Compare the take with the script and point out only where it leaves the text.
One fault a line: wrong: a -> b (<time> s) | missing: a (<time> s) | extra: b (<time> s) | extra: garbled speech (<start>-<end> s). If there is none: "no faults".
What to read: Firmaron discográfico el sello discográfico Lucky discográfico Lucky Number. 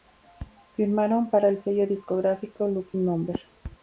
wrong: discográfico -> para (1.3 s)
missing: discográfico Lucky (3.0 s)